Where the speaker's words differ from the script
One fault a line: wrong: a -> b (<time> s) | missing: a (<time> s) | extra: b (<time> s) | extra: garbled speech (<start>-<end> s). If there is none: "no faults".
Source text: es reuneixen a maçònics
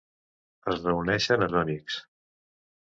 no faults